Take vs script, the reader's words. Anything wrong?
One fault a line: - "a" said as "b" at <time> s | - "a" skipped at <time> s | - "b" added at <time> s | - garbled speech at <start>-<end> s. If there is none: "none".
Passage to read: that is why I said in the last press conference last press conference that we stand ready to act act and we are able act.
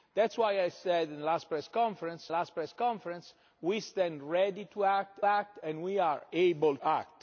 none